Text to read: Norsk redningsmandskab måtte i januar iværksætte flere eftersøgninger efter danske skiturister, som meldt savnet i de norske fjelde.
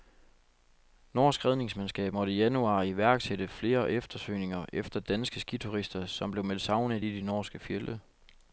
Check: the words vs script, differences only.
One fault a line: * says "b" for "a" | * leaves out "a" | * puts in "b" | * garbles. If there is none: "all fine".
* puts in "blev"